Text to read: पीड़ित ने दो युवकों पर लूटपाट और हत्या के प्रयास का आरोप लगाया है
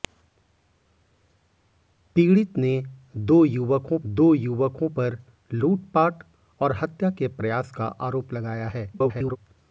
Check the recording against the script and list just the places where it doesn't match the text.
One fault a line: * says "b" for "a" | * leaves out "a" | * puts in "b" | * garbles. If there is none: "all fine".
* puts in "दो युवकों"
* garbles